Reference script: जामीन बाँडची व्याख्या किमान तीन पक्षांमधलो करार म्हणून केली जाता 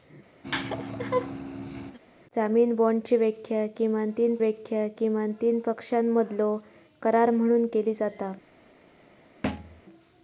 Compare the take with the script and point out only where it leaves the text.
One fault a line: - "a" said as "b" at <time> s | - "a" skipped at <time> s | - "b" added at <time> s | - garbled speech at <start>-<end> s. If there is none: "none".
- "व्याख्या किमान तीन" added at 4.4 s